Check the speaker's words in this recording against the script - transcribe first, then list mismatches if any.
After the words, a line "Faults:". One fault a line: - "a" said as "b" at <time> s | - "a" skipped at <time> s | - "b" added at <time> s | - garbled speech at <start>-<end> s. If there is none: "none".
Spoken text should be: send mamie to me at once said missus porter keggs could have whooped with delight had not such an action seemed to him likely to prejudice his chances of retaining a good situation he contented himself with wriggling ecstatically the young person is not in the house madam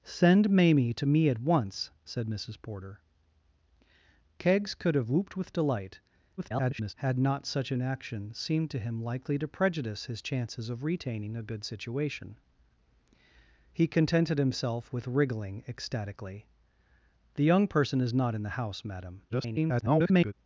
send mamie to me at once said missus porter keggs could have whooped with delight [garbled] had not such an action seemed to him likely to prejudice his chances of retaining a good situation he contented himself with wriggling ecstatically the young person is not in the house madam [garbled]
Faults:
- garbled speech at 6.4-6.9 s
- garbled speech at 19.3-20.3 s